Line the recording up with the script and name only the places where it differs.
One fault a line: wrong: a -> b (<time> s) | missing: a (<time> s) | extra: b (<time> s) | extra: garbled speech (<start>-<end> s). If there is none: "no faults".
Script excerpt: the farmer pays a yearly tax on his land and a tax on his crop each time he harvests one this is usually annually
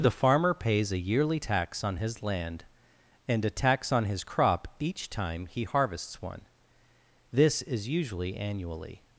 no faults